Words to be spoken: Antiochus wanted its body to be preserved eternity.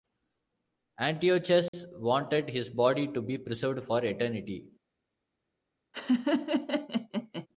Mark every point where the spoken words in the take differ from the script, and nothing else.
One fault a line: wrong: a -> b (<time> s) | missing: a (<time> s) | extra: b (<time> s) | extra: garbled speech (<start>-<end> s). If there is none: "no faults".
wrong: its -> his (2.5 s)
extra: for (3.8 s)